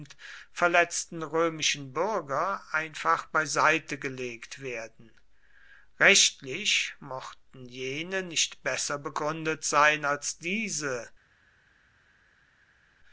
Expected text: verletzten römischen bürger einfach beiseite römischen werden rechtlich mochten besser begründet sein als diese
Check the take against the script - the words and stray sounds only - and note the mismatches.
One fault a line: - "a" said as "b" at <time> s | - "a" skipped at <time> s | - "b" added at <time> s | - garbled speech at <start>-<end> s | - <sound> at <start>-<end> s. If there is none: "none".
- "römischen" said as "gelegt" at 4.0 s
- "jene nicht" added at 7.6 s